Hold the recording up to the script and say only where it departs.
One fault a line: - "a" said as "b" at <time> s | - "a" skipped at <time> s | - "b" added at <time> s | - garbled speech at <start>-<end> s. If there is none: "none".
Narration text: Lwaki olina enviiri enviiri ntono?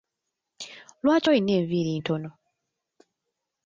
- "enviiri" skipped at 1.9 s